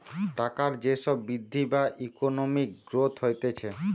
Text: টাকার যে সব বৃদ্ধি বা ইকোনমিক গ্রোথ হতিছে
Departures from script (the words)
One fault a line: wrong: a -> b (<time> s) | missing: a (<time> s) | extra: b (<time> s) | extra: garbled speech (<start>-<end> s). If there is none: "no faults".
no faults